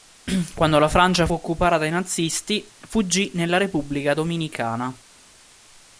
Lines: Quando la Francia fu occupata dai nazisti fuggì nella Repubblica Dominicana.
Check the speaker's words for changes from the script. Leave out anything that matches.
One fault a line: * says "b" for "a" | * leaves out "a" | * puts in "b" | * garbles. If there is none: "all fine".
* leaves out "fu"